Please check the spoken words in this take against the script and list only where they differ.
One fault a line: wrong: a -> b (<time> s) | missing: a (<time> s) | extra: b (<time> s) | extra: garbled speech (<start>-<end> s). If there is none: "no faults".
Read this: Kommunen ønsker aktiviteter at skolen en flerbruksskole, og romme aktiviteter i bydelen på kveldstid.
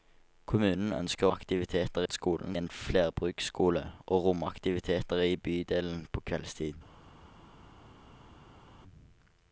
no faults